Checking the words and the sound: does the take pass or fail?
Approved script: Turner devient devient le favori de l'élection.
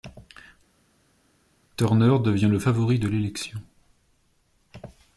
fail